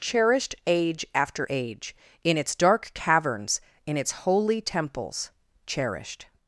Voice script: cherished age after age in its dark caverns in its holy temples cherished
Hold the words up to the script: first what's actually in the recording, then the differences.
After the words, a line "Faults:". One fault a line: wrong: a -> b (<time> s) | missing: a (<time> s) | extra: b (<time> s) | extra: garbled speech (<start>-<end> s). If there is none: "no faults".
cherished age after age in its dark caverns in its holy temples cherished
Faults:
no faults